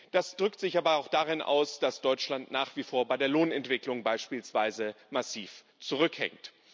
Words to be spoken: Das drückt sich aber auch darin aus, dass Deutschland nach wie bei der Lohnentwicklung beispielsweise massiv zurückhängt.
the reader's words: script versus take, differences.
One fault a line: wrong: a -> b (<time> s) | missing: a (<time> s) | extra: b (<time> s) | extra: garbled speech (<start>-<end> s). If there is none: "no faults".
extra: vor (2.8 s)